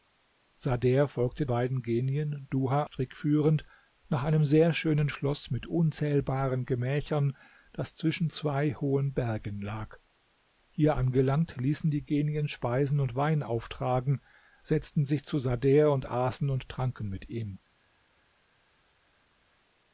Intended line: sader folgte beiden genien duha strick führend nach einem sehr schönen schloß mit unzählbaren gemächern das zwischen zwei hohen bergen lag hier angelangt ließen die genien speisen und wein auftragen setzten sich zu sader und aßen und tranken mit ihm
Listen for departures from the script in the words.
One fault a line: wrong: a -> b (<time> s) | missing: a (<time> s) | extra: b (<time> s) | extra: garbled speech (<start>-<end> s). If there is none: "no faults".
no faults